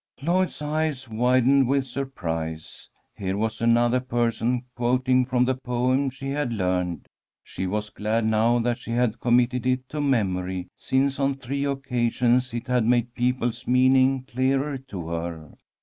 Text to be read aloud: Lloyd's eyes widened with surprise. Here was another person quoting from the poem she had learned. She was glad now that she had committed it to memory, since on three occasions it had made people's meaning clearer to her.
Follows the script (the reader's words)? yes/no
yes